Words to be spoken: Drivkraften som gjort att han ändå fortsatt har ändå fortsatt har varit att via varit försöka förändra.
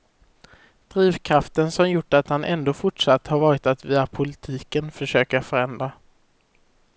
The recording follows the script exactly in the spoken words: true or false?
false